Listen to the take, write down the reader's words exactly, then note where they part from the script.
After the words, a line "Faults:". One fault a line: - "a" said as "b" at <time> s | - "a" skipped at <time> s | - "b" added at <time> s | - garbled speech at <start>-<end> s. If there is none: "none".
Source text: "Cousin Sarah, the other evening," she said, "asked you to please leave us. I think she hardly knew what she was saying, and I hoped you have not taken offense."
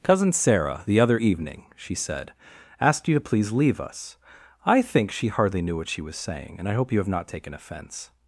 "Cousin Sarah, the other evening," she said, "asked you to please leave us. I think she hardly knew what she was saying, and I hope you have not taken offense."
Faults:
- "hoped" said as "hope" at 6.7 s